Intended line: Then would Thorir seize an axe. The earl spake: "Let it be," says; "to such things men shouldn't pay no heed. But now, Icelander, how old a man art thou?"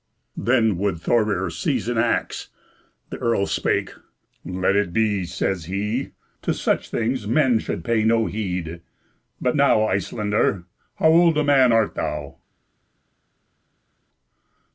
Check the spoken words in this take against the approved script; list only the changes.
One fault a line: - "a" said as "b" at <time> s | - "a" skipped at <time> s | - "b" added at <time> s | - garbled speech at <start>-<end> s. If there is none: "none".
- "he" added at 5.7 s
- "shouldn't" said as "should" at 7.6 s